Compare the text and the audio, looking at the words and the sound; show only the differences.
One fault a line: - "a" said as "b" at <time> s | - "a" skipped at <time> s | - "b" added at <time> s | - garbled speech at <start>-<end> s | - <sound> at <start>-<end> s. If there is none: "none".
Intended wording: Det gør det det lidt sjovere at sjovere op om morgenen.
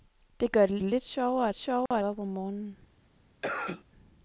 - dropout at 1.9-1.9 s
- cough at 3.4-3.8 s